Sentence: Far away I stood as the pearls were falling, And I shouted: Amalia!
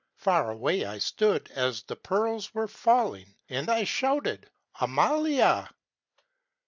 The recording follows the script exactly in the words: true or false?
true